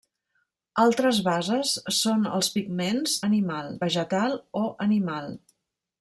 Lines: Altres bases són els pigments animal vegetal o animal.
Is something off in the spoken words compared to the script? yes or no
no